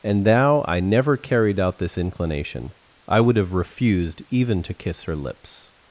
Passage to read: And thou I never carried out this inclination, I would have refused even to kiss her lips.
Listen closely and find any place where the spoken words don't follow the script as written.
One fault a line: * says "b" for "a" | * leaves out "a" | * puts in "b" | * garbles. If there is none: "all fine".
all fine